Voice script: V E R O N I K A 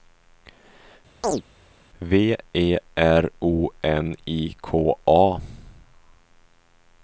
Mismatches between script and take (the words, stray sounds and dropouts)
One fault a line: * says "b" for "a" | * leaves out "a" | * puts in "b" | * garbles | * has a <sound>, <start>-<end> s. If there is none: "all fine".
* has a chirp, 1.2-1.4 s